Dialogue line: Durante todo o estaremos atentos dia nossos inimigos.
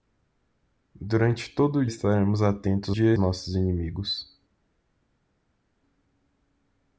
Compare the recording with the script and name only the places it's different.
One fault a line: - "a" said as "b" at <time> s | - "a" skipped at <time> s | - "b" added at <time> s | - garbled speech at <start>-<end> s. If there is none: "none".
none